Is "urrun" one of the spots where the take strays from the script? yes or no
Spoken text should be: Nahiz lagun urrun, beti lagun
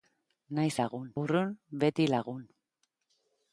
no